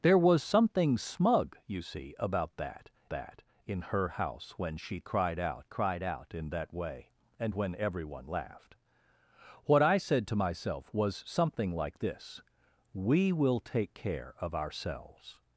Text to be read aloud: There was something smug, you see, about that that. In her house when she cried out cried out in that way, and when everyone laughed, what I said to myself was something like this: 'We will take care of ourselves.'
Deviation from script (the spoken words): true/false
false